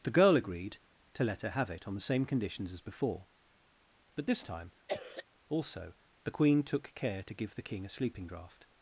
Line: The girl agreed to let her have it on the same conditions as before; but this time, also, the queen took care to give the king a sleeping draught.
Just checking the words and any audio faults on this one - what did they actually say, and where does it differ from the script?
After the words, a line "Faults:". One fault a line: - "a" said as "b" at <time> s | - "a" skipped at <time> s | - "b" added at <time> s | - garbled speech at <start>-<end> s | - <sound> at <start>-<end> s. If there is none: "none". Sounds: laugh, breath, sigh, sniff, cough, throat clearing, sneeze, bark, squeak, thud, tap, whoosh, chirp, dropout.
The girl agreed to let her have it on the same conditions as before; but this time, also, the queen took care to give the king a sleeping draught.
Faults:
- cough at 4.9-5.3 s